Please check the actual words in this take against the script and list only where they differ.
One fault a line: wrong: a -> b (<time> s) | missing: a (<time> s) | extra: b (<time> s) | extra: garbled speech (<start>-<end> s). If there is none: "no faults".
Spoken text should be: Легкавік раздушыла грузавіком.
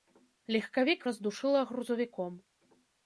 no faults